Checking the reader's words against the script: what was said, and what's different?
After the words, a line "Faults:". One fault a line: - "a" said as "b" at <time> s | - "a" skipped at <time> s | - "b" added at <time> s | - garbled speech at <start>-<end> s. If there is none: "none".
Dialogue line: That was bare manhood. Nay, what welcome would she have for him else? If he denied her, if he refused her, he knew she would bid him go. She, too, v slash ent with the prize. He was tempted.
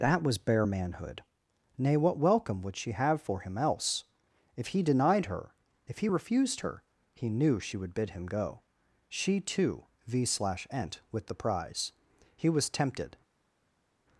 That was bare manhood. Nay, what welcome would she have for him else? If he denied her, if he refused her, he knew she would bid him go. She, too, v slash ent with the prize. He was tempted.
Faults:
none